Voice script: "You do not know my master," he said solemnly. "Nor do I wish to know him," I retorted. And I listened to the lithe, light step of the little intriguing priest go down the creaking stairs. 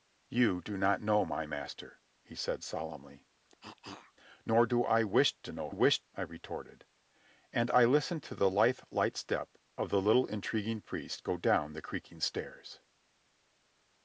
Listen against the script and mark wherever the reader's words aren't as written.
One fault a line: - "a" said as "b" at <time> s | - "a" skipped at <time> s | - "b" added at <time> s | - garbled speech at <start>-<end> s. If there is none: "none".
- "him" said as "wish" at 5.7 s